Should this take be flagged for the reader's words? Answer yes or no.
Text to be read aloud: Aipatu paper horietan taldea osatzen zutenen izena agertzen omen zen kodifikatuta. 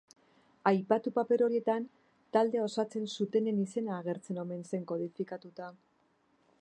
no